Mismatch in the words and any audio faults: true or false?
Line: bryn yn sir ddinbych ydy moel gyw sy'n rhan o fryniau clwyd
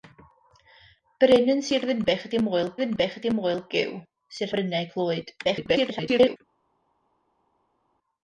true